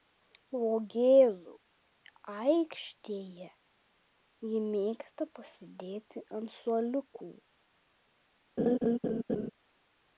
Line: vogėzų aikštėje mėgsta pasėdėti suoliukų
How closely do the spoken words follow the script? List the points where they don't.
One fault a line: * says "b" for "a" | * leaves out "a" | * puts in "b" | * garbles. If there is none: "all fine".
* puts in "ji"
* puts in "ant"